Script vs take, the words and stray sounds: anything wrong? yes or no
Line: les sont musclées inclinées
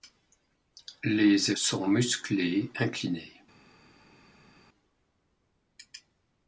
no